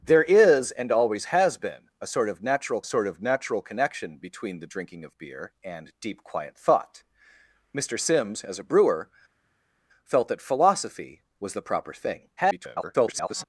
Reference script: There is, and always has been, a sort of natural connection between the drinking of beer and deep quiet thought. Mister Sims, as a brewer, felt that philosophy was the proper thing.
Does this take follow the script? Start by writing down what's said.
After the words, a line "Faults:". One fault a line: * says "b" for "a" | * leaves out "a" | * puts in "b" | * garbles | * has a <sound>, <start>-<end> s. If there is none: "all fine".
There is, and always has been, a sort of natural sort of natural connection between the drinking of beer and deep quiet thought. Mister Sims, as a brewer, felt that philosophy was the proper thing. [garbled]
Faults:
* puts in "sort of natural"
* garbles